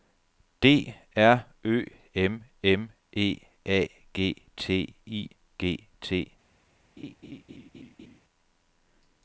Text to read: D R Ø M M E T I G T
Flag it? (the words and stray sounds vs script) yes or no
yes